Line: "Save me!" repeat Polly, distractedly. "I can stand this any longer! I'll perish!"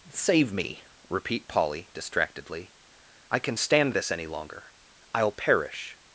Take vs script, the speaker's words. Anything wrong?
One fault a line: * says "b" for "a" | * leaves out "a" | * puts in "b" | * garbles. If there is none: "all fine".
all fine